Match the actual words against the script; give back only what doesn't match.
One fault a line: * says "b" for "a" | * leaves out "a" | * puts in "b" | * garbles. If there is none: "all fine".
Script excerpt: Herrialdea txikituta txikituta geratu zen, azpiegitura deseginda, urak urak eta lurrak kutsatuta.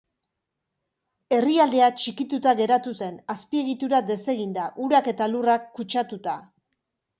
* leaves out "txikituta"
* leaves out "urak"